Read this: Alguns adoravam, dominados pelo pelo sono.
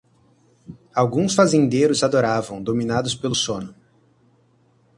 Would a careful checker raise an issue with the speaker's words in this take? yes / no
yes